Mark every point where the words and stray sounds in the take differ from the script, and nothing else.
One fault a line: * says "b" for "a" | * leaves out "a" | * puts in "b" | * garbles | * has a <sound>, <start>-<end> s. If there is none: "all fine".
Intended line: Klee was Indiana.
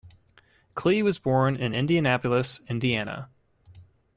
* puts in "born in Indianapolis"